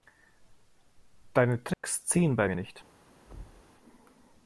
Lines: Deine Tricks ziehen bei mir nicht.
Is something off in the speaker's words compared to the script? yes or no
no